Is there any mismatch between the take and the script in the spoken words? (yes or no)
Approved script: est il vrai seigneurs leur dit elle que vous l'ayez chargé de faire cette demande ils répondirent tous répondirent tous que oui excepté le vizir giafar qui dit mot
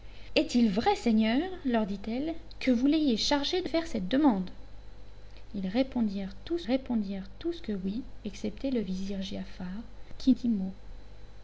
no